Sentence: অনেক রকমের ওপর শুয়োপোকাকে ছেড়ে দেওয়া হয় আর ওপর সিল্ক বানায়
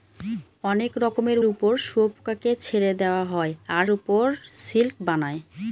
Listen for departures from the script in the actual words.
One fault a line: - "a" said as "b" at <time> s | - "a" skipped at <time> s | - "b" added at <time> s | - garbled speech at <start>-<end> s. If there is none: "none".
none